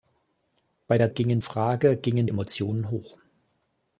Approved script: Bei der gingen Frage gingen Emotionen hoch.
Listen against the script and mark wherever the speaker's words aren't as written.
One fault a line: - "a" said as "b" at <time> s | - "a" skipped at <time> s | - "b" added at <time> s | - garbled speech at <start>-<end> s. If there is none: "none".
none